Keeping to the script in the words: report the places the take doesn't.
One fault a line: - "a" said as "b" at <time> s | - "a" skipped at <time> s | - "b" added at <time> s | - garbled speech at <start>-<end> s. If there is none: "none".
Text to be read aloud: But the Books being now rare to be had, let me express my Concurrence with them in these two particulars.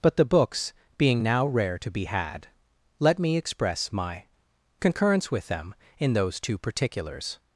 - "these" said as "those" at 6.1 s